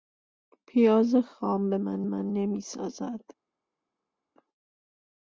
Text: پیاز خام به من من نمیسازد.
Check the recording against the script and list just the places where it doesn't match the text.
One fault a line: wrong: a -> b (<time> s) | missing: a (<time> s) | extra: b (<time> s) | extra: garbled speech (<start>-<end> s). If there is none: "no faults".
no faults